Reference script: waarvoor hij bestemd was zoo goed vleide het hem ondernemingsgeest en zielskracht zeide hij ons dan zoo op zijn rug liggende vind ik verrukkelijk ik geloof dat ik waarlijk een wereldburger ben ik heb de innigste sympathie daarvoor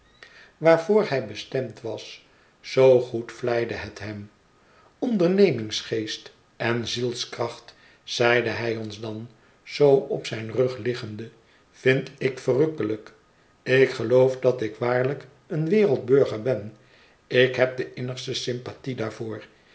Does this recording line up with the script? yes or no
yes